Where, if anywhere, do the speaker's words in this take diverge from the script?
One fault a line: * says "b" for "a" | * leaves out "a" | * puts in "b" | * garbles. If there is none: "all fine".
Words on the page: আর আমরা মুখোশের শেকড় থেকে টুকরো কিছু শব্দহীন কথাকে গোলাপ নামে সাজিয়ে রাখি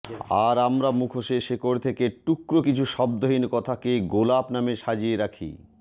all fine